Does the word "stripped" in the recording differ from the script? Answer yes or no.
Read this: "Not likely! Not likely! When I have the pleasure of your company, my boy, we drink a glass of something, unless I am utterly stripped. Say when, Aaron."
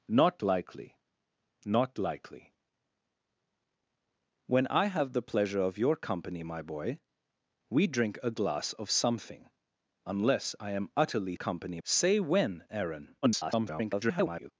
yes